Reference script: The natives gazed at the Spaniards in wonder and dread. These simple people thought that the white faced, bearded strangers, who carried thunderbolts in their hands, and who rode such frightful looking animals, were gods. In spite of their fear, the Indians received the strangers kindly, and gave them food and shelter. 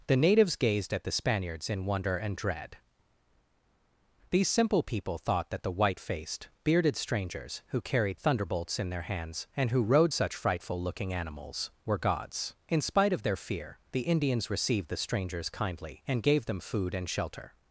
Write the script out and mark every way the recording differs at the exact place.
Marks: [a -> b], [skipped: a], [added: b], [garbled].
The natives gazed at the Spaniards in wonder and dread. These simple people thought that the white faced, bearded strangers, who carried thunderbolts in their hands, and who rode such frightful looking animals, were gods. In spite of their fear, the Indians received the strangers kindly, and gave them food and shelter.